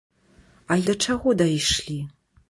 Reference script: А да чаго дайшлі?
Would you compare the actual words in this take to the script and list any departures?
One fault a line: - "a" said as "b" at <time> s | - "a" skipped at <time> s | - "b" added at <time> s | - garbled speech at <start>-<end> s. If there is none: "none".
none